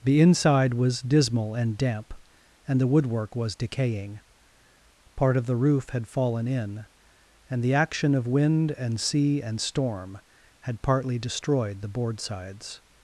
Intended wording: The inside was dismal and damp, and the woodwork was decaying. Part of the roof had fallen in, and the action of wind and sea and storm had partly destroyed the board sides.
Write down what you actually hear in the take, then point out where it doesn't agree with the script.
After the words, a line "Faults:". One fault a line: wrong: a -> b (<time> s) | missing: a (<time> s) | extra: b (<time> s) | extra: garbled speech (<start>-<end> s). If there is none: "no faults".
The inside was dismal and damp, and the woodwork was decaying. Part of the roof had fallen in, and the action of wind and sea and storm had partly destroyed the board sides.
Faults:
no faults